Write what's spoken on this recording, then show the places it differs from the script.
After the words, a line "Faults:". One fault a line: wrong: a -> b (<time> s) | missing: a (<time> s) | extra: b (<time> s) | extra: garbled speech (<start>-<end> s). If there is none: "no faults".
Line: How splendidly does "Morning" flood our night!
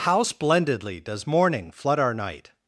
How splendidly does "Morning" flood our night!
Faults:
no faults